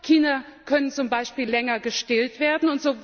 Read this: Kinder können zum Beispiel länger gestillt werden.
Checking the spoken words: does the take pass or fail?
pass